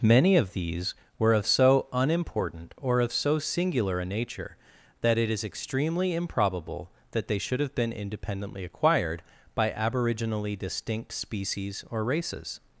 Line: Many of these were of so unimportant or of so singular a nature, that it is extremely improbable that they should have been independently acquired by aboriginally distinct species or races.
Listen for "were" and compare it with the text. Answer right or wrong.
right